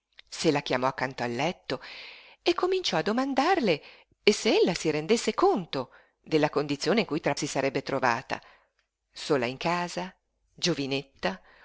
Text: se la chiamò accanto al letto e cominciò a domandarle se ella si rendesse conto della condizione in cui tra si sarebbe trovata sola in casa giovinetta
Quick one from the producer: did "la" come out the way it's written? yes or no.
yes